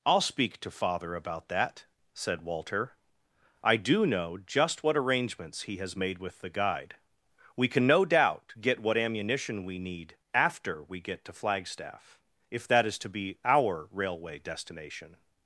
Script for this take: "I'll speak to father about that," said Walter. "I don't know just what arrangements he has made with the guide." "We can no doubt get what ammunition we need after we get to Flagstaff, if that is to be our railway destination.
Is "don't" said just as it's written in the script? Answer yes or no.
no